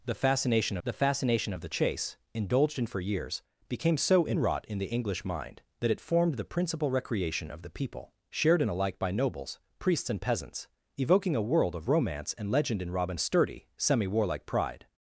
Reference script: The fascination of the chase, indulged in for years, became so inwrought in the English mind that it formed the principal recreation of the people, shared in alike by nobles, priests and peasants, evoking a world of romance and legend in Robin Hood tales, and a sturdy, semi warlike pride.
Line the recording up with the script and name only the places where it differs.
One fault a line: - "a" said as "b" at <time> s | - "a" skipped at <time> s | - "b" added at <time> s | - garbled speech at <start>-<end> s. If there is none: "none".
- "the fascination" added at 0.8 s
- "Hood tales and" skipped at 13.2 s